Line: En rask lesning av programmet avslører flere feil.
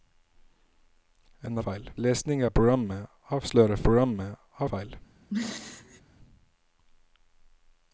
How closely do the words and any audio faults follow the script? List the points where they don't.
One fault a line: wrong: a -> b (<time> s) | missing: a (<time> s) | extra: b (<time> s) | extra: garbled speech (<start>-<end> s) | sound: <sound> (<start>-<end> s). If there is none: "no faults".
wrong: rask -> feil (1.6 s)
wrong: flere -> programmet (3.9 s)
sound: throat clearing (5.3-6.0 s)